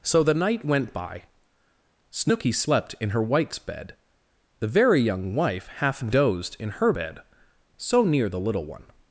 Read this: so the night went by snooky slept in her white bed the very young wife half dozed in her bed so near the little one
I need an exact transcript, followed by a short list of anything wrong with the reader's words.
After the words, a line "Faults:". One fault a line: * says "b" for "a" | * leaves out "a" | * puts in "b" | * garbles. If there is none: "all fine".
so the night went by snooky slept in her whites bed the very young wife half dozed in her bed so near the little one
Faults:
* says "whites" for "white"